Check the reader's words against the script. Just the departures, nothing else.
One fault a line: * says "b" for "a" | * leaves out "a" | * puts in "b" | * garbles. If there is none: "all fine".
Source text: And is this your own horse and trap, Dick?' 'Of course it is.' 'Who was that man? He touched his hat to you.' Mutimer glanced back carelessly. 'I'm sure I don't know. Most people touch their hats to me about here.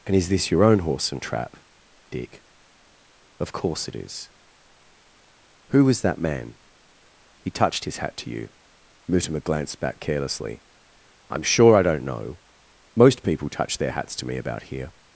all fine